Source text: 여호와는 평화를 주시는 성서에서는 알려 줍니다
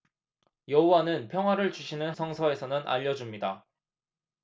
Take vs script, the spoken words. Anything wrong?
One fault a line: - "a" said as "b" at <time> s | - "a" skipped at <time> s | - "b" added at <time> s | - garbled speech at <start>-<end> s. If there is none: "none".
none